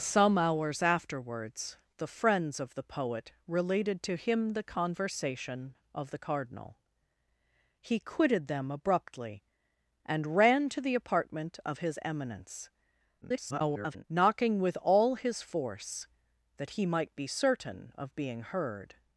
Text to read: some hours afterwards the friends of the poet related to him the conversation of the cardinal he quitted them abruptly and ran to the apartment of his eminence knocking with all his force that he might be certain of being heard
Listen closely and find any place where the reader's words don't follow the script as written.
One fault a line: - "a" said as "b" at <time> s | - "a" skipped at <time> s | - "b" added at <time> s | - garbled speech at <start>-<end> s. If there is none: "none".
- garbled speech at 13.2-14.0 s